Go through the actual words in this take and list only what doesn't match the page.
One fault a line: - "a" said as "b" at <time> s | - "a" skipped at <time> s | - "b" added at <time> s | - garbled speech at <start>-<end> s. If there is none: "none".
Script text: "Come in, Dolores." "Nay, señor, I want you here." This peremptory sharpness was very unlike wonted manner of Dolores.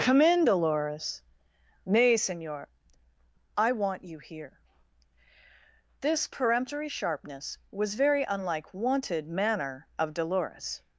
none